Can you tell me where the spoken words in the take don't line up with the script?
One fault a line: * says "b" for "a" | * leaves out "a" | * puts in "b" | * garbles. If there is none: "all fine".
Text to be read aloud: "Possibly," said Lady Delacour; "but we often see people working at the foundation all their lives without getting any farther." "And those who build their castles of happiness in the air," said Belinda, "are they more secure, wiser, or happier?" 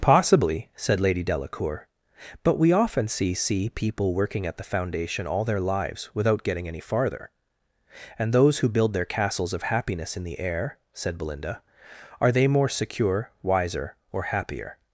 * puts in "see"